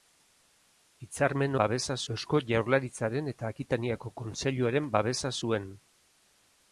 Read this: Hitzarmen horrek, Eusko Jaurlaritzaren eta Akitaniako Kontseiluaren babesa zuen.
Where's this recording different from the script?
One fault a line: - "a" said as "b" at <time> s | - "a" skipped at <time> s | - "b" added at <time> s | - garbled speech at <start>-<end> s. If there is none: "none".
- "horrek" said as "babesa" at 1.6 s